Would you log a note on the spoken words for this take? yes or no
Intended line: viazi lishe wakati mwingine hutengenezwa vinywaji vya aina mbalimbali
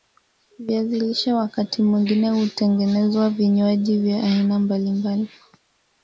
no